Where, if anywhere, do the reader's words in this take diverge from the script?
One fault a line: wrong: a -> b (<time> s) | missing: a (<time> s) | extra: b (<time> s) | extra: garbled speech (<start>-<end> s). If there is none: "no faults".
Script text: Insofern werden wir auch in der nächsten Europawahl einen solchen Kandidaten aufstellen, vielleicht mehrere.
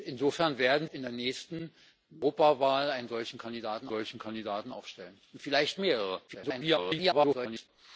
missing: wir auch (0.9 s)
extra: solchen Kandidaten (3.9 s)
extra: garbled speech (6.3-7.7 s)